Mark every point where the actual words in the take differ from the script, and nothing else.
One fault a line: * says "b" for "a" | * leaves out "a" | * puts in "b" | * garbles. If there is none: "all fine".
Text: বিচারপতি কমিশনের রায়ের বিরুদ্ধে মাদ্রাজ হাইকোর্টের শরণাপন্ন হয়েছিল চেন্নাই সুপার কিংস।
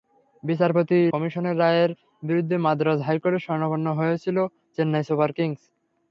all fine